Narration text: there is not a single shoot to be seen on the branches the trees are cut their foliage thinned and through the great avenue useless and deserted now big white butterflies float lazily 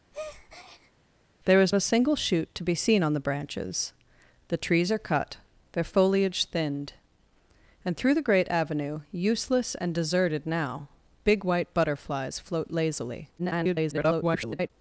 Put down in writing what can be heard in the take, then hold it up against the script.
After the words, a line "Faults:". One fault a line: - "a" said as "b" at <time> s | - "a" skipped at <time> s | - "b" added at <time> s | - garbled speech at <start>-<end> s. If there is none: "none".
there is a single shoot to be seen on the branches the trees are cut their foliage thinned and through the great avenue useless and deserted now big white butterflies float lazily [garbled]
Faults:
- "not" skipped at 1.7 s
- garbled speech at 13.4-14.7 s